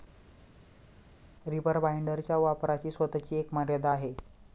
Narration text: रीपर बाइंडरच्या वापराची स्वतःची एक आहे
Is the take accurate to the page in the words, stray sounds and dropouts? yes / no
no